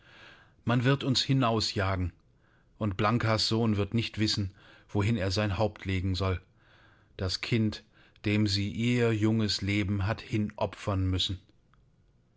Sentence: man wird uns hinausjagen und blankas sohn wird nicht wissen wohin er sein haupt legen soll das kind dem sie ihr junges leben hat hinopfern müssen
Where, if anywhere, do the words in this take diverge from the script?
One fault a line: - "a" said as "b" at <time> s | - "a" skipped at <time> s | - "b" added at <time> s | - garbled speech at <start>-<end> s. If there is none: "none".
none